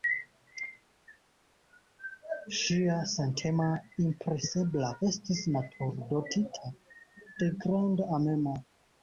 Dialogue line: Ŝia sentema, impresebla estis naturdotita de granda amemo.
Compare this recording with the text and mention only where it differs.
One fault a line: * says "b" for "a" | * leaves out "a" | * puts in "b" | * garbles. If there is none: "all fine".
all fine